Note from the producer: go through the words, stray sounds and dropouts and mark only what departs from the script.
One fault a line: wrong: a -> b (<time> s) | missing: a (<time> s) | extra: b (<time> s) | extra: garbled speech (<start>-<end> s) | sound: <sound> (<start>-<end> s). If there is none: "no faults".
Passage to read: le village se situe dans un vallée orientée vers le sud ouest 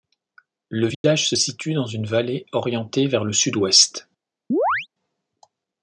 sound: dropout (0.9-1.0 s)
wrong: un -> une (1.9 s)
sound: chirp (4.5-4.9 s)